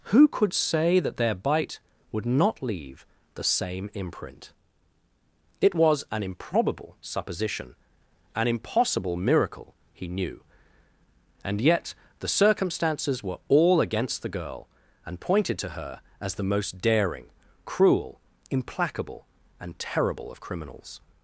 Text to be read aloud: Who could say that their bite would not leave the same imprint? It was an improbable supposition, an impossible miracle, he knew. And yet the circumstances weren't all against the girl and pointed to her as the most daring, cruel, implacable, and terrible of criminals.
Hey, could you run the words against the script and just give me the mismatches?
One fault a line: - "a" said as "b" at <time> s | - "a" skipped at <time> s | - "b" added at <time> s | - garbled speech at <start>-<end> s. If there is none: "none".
- "weren't" said as "were" at 13.2 s